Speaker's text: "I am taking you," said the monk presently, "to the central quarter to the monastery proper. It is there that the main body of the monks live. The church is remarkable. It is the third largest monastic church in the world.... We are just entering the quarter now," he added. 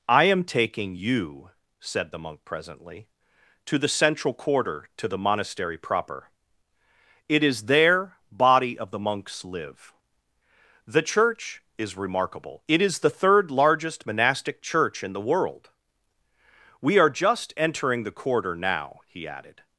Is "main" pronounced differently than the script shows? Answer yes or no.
yes